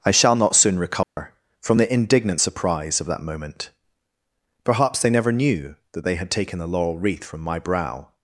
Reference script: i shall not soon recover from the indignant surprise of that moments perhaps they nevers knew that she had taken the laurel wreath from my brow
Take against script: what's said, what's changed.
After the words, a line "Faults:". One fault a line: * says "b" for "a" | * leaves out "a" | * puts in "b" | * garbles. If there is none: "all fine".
i shall not soon recover from the indignant surprise of that moment perhaps they never knew that they had taken the laurel wreath from my brow
Faults:
* says "moment" for "moments"
* says "never" for "nevers"
* says "they" for "she"